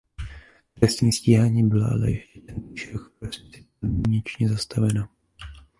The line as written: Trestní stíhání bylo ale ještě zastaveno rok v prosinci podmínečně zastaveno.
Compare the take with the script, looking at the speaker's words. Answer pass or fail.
fail